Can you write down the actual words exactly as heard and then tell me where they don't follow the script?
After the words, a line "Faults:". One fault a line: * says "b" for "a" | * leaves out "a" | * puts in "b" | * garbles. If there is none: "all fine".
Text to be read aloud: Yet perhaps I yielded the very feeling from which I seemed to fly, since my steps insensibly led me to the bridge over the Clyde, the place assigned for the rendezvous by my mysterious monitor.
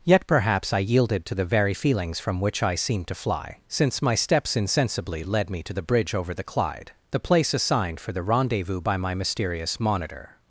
Yet perhaps I yielded to the very feelings from which I seemed to fly, since my steps insensibly led me to the bridge over the Clyde, the place assigned for the rendezvous by my mysterious monitor.
Faults:
* puts in "to"
* says "feelings" for "feeling"